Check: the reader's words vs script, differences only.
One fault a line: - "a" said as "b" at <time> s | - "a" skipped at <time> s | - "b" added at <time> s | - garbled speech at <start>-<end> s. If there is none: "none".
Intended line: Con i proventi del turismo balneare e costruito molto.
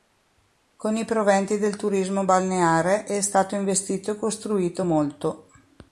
- "è stato investito" added at 3.0 s